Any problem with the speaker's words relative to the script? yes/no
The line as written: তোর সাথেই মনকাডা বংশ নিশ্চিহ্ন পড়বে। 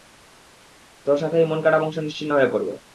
yes